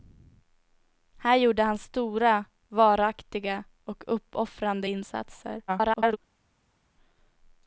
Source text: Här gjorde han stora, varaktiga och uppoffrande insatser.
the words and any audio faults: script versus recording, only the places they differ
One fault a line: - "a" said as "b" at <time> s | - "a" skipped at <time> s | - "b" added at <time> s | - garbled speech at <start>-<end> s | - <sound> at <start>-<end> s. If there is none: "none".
- garbled speech at 5.7-6.2 s